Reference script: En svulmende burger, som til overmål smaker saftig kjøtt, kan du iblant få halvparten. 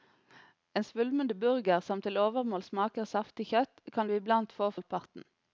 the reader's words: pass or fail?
pass